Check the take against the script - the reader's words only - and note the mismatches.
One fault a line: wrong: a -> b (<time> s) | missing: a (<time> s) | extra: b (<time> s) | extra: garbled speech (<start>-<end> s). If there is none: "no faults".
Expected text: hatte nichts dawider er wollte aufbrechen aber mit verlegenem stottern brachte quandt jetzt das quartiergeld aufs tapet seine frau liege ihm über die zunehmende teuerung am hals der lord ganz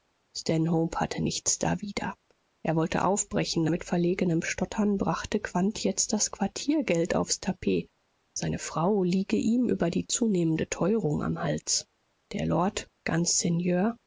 missing: aber (3.7 s)